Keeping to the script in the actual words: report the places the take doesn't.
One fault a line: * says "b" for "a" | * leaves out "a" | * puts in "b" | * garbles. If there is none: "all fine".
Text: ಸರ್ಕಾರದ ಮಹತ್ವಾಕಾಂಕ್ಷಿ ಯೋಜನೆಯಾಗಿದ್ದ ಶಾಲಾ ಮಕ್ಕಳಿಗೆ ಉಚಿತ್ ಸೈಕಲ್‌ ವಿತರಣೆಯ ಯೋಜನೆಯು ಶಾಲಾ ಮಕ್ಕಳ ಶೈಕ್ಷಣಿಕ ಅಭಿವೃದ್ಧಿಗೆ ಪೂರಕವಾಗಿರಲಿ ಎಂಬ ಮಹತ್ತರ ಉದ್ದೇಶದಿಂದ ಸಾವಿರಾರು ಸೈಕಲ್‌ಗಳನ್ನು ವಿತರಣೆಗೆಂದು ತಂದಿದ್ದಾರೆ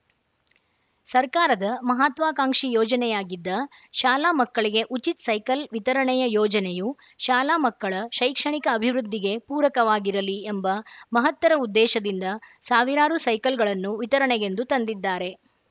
all fine